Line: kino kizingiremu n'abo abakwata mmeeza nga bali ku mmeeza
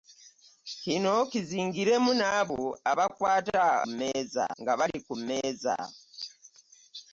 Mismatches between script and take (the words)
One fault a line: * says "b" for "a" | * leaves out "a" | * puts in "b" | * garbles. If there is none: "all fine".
all fine